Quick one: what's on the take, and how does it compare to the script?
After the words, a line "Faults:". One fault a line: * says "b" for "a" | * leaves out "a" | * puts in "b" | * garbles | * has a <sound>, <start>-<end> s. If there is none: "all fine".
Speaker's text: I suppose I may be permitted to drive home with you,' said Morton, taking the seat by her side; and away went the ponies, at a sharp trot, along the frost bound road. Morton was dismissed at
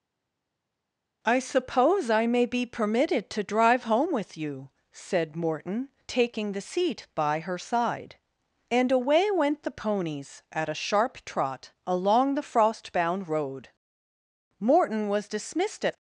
I suppose I may be permitted to drive home with you,' said Morton, taking the seat by her side; and away went the ponies, at a sharp trot, along the frost bound road. Morton was dismissed at
Faults:
all fine